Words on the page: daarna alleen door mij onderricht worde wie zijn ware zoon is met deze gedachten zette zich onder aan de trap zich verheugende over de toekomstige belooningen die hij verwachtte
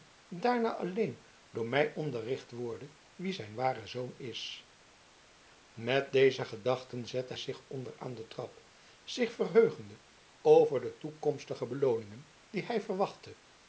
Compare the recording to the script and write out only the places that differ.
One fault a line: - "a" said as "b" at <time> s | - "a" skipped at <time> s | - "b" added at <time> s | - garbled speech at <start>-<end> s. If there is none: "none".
none